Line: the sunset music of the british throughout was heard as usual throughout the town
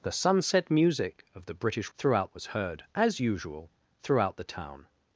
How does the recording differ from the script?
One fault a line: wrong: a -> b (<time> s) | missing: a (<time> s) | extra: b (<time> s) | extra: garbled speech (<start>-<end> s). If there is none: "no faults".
no faults